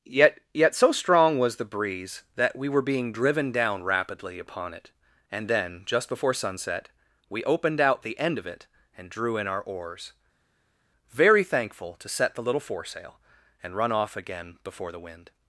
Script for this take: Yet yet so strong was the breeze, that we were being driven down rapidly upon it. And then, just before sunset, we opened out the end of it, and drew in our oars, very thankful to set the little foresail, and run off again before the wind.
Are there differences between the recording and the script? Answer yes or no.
no